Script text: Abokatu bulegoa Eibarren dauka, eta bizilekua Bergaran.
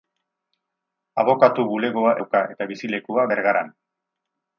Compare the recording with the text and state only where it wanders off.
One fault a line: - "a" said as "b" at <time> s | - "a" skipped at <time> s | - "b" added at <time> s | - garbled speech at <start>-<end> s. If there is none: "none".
- "Eibarren" skipped at 2.1 s